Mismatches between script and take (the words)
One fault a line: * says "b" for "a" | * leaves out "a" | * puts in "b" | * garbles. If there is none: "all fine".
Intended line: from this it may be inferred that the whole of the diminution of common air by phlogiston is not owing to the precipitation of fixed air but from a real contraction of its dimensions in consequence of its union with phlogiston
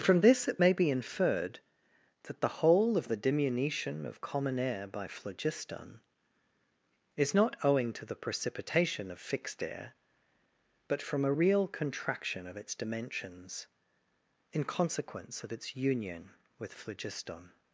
all fine